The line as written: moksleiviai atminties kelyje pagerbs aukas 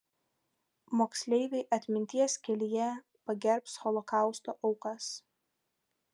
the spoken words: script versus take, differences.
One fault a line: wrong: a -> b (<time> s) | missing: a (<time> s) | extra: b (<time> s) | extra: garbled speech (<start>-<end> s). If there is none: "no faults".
extra: holokausto (3.8 s)